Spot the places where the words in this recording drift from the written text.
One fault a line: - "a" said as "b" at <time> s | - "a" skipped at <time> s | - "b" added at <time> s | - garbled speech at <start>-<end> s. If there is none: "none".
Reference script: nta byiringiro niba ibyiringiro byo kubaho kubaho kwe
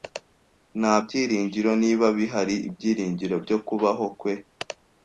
- "bihari" added at 2.2 s
- "kubaho" skipped at 4.1 s